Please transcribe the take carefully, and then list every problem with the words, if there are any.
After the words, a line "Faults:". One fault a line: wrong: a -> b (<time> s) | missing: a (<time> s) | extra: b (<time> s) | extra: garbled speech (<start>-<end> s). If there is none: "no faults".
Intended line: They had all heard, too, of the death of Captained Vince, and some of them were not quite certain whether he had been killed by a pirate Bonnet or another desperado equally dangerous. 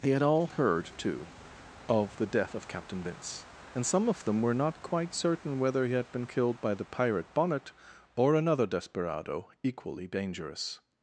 They had all heard, too, of the death of Captain Vince, and some of them were not quite certain whether he had been killed by the pirate Bonnet or another desperado equally dangerous.
Faults:
wrong: Captained -> Captain (2.7 s)
wrong: a -> the (6.7 s)